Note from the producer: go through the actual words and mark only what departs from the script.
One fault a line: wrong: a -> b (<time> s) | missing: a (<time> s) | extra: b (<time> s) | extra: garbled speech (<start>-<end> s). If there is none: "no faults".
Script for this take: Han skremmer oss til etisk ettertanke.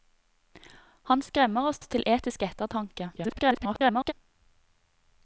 extra: oss (1.8 s)
extra: garbled speech (3.2-4.1 s)